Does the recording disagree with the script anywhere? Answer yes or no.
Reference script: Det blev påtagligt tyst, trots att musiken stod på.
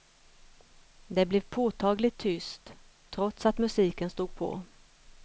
no